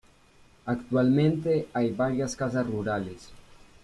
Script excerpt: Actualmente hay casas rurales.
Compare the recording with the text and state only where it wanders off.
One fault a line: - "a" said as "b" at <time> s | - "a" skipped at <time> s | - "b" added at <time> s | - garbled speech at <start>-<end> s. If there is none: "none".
- "varias" added at 1.9 s